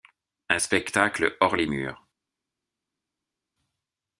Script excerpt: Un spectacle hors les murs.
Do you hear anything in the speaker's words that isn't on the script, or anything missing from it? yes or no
no